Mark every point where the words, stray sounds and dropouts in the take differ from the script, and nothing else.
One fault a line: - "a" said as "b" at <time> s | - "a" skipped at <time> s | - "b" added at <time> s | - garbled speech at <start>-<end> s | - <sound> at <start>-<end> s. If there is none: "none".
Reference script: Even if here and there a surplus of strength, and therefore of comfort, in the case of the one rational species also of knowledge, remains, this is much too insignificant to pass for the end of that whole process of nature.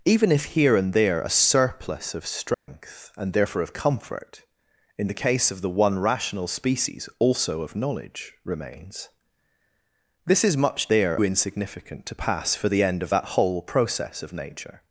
- dropout at 2.5-2.7 s
- "too" said as "there" at 10.9 s